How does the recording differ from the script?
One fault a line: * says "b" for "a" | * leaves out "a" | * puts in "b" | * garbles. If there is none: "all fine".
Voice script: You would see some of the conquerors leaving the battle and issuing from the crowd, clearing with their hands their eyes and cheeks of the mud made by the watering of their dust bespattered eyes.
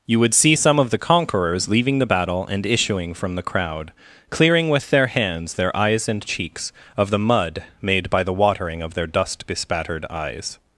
all fine